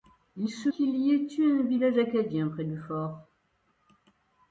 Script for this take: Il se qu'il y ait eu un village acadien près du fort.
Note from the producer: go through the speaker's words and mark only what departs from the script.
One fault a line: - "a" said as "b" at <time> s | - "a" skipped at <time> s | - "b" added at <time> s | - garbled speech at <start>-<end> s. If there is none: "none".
none